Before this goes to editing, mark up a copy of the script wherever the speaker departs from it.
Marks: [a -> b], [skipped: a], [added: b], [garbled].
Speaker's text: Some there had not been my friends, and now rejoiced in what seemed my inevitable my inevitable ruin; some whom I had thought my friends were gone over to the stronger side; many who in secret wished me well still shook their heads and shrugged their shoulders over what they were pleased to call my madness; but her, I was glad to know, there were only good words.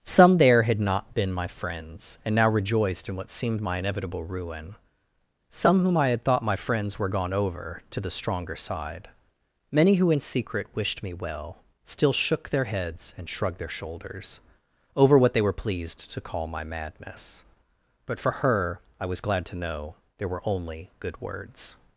Some there had not been my friends, and now rejoiced in what seemed my inevitable [skipped: my inevitable] ruin; some whom I had thought my friends were gone over to the stronger side; many who in secret wished me well still shook their heads and shrugged their shoulders over what they were pleased to call my madness; but [added: for] her, I was glad to know, there were only good words.